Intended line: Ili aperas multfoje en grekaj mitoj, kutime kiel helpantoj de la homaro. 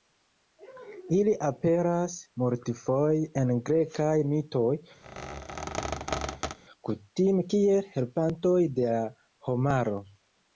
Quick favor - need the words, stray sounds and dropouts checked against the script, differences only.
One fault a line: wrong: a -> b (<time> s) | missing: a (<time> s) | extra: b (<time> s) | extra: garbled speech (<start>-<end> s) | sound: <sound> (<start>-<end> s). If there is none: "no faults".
sound: squeak (5.0-6.6 s)